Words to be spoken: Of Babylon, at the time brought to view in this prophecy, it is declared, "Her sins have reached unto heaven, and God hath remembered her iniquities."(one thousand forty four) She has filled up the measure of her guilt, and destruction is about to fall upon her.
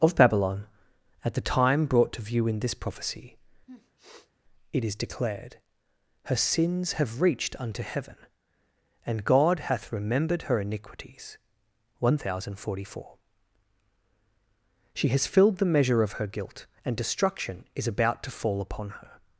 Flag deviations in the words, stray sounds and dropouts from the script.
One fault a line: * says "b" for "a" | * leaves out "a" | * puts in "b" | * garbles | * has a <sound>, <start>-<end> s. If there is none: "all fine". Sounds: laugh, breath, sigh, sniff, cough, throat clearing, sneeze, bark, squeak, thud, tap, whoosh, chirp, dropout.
* has a sniff, 3.7-4.3 s
* leaves out "up"